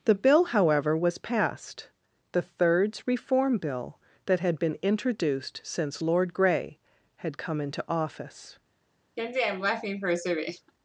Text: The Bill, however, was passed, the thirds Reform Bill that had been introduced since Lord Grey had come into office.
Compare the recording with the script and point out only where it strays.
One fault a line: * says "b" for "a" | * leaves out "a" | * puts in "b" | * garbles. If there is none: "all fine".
all fine